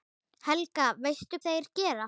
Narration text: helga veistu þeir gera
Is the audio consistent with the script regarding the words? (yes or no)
yes